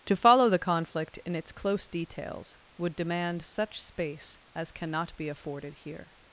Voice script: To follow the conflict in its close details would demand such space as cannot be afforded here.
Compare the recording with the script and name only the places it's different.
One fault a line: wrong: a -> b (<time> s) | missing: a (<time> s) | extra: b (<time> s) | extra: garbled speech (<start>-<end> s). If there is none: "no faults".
no faults